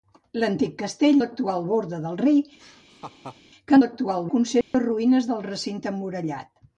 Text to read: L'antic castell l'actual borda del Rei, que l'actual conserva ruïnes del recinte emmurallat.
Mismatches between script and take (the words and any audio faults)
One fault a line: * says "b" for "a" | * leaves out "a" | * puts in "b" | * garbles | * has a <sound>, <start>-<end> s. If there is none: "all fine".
* has a laugh, 2.6-3.4 s
* has a dropout, 4.6-4.7 s